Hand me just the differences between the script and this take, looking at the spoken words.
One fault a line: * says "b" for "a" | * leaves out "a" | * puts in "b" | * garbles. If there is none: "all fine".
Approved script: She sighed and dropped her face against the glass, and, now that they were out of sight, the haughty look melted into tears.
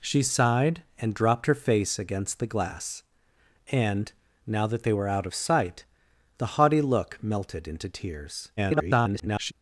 * garbles